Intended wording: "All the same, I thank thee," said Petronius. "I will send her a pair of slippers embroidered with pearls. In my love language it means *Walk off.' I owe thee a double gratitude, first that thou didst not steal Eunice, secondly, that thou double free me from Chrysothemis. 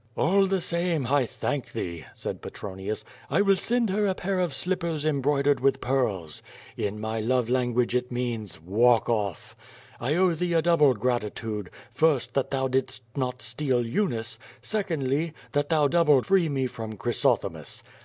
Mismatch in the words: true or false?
false